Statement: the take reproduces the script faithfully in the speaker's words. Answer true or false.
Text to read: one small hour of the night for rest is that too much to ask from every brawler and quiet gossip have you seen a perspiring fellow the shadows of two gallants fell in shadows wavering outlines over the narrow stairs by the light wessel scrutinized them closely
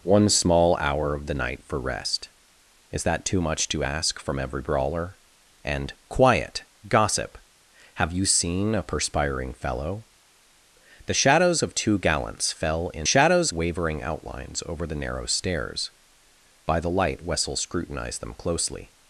true